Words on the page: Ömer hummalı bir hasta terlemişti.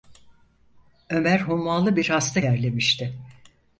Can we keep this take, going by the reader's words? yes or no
yes